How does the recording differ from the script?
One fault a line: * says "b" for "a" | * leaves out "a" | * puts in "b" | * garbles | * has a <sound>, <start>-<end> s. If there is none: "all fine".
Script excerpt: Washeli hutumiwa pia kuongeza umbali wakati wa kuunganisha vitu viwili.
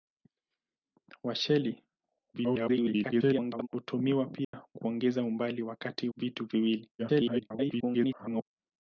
* garbles
* has a dropout, 4.4-4.5 s
* leaves out "wa kuunganisha"
* garbles